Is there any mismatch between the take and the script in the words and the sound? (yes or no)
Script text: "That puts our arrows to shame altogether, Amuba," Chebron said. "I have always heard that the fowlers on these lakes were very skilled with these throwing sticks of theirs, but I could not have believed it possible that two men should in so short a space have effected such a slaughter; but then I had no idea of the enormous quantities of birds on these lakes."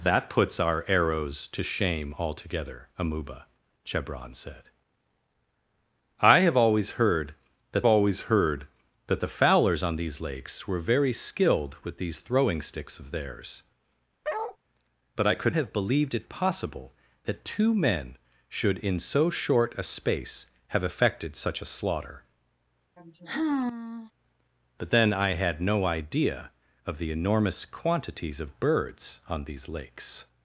yes